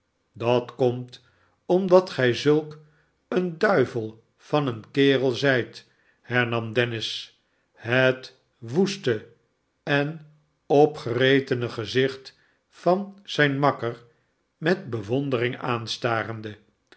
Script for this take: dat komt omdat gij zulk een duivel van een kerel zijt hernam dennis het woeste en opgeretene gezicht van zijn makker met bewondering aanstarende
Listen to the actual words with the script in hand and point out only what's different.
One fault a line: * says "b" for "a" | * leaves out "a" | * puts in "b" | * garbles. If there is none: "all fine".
all fine